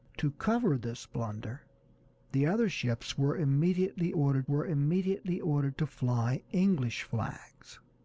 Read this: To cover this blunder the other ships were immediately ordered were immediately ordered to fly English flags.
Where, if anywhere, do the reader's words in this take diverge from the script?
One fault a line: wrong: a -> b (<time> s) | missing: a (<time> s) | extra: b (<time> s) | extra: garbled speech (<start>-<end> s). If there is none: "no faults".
no faults